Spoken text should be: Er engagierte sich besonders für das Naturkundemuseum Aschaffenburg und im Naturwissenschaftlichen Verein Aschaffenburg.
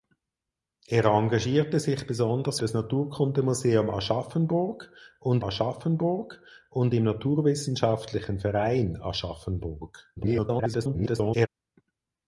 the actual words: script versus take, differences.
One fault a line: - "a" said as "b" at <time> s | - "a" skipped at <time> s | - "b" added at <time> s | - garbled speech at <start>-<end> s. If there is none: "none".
- "für" skipped at 2.6 s
- "Aschaffenburg und" added at 5.4 s
- garbled speech at 10.2-11.5 s